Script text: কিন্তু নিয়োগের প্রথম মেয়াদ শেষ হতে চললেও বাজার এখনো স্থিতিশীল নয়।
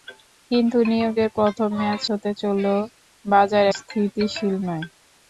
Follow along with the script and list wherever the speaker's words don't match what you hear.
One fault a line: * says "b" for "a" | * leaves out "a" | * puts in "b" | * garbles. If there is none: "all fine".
* leaves out "শেষ"
* leaves out "এখনো"